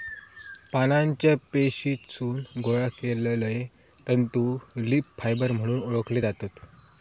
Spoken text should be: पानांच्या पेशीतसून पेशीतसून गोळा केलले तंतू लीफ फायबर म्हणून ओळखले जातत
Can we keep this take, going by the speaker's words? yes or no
no